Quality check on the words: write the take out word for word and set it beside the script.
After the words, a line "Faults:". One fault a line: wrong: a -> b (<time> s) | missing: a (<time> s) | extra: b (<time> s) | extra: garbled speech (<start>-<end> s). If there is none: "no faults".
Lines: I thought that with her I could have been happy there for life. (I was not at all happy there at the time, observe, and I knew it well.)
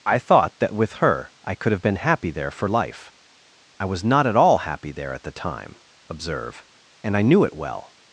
I thought that with her I could have been happy there for life. (I was not at all happy there at the time, observe, and I knew it well.)
Faults:
no faults